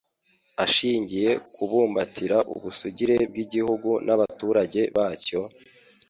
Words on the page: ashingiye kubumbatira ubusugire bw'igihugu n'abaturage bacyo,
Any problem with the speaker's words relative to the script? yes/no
no